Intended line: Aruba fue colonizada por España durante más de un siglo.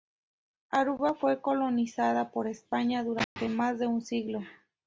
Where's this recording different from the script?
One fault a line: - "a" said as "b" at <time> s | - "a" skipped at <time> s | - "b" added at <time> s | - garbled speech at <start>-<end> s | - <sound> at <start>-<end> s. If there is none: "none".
- dropout at 3.2-3.4 s